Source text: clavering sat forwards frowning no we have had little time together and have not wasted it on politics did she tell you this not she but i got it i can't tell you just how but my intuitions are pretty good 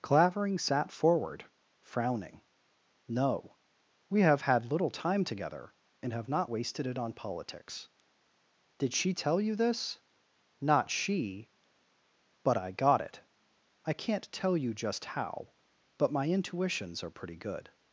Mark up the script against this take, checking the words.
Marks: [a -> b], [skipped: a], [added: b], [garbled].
clavering sat [forwards -> forward] frowning no we have had little time together and have not wasted it on politics did she tell you this not she but i got it i can't tell you just how but my intuitions are pretty good